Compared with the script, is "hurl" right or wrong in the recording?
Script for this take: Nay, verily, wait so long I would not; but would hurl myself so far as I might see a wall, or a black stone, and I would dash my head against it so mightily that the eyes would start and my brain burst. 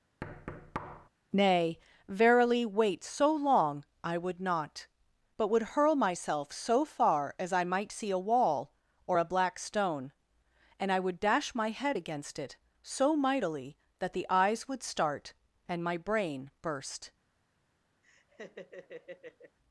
right